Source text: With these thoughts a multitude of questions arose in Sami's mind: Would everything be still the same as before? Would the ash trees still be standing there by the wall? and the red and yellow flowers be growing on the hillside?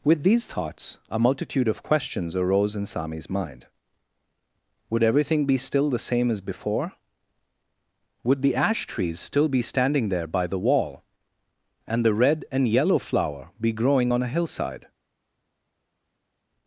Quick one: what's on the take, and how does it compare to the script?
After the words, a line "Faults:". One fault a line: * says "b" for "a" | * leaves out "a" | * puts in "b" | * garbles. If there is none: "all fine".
With these thoughts a multitude of questions arose in Sami's mind: Would everything be still the same as before? Would the ash trees still be standing there by the wall? and the red and yellow flower be growing on a hillside?
Faults:
* says "flower" for "flowers"
* says "a" for "the"